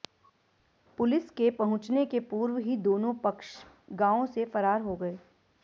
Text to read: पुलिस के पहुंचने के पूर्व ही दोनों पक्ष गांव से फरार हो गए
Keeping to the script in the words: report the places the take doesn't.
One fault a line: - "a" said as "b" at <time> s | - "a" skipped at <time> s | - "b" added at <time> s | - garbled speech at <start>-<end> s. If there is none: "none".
none